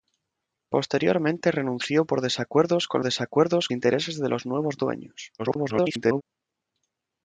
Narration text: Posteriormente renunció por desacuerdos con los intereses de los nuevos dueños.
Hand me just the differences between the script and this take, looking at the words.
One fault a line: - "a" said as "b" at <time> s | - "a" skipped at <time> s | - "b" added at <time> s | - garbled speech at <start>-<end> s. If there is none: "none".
- "los" said as "desacuerdos" at 3.0 s
- garbled speech at 5.4-6.2 s